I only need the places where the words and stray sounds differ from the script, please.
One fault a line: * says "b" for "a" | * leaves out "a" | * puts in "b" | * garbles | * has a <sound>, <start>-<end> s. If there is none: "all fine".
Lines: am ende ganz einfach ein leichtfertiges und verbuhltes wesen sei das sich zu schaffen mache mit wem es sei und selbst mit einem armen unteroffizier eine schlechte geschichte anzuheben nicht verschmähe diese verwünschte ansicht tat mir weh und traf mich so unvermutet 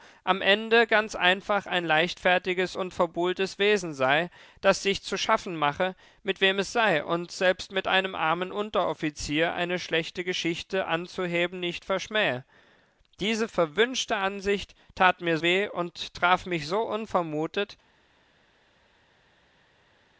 all fine